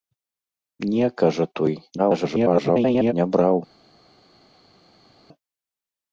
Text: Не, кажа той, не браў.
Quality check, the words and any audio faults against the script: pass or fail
fail